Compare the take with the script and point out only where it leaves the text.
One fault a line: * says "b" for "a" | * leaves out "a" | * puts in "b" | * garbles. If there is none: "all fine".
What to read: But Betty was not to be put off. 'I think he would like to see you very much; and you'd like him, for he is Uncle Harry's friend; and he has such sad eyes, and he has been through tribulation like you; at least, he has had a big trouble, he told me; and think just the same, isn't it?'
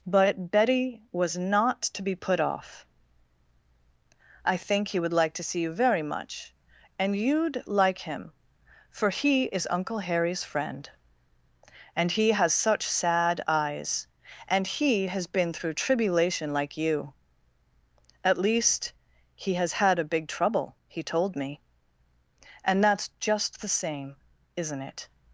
* says "that's" for "think"